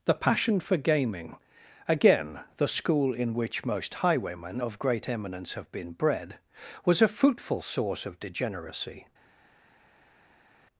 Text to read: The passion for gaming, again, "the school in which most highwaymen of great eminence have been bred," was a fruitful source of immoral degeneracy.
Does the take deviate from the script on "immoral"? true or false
true